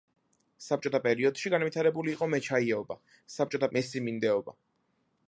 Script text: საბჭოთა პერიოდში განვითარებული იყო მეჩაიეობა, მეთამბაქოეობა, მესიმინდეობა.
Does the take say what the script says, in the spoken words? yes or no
no